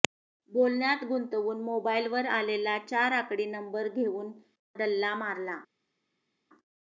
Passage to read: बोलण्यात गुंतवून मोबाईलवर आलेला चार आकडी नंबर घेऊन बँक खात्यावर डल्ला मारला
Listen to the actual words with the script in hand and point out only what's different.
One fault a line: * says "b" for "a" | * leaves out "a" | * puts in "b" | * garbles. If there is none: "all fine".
* leaves out "बँक खात्यावर"